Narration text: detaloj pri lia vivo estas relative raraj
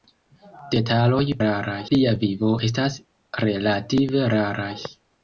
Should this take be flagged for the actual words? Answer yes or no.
yes